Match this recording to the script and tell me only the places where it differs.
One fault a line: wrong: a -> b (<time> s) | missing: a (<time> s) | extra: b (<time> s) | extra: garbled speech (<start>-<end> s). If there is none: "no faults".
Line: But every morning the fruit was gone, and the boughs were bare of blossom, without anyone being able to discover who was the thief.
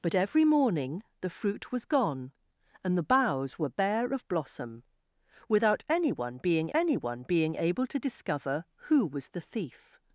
extra: anyone being (6.7 s)